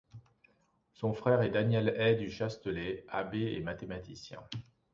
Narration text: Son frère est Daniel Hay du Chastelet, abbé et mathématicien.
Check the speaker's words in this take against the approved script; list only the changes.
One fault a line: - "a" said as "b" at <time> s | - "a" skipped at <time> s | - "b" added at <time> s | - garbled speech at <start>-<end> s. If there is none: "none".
none